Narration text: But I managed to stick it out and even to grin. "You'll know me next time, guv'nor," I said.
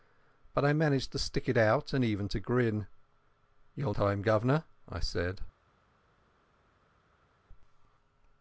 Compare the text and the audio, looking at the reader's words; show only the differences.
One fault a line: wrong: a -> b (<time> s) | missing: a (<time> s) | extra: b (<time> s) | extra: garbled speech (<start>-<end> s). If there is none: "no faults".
missing: know me next (3.9 s)